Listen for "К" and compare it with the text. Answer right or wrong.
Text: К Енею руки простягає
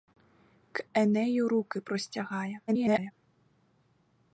right